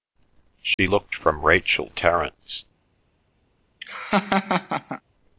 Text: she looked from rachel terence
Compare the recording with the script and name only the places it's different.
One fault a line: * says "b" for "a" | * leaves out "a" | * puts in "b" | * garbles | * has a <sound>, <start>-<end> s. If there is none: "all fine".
* has a dropout, 0.7-0.8 s
* has a laugh, 3.8-5.0 s